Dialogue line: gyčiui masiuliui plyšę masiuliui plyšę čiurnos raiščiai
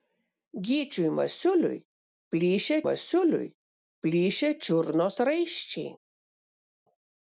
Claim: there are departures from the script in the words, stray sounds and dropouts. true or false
false